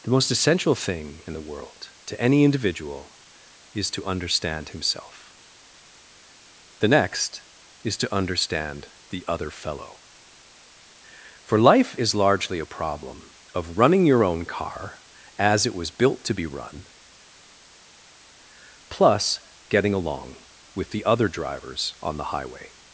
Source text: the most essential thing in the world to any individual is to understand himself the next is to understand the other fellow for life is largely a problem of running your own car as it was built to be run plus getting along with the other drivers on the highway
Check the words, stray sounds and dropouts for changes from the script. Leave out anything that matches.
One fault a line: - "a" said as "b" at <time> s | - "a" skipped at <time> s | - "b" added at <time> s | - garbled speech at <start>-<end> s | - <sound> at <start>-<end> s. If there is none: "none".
none